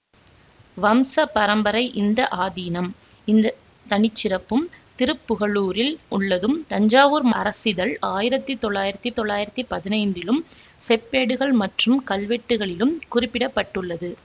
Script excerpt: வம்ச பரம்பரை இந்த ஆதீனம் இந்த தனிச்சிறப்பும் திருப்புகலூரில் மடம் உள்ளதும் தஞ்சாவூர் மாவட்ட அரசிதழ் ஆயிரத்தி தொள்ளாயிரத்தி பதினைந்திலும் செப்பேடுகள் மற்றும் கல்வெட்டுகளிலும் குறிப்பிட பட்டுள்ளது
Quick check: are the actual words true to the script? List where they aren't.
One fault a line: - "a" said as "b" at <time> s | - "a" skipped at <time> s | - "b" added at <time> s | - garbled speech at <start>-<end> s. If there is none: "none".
- "மடம்" skipped at 5.9 s
- "மாவட்ட" skipped at 7.3 s
- "தொள்ளாயிரத்தி" added at 9.1 s